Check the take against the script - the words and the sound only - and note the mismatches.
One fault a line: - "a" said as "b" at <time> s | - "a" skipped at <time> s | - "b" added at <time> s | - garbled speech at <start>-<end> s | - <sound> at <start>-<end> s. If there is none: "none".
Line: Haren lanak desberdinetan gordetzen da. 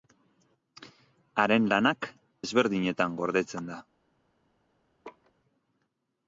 - laugh at 5.0-5.3 s